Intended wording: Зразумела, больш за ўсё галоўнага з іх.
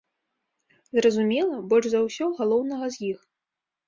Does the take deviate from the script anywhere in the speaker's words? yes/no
no